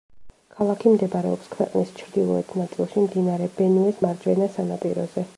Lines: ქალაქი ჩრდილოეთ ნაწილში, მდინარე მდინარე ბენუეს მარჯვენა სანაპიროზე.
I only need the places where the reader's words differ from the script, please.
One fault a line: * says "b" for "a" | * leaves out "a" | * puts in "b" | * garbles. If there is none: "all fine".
* puts in "მდებარეობს ქვეყნის"
* leaves out "მდინარე"